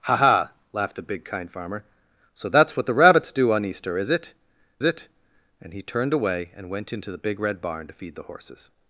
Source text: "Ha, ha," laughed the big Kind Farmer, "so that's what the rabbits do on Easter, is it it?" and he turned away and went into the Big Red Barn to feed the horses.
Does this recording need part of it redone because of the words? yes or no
no